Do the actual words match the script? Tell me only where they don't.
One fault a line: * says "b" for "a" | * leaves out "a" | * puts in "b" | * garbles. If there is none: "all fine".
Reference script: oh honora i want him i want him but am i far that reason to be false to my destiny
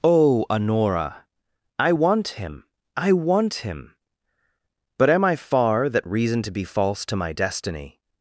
all fine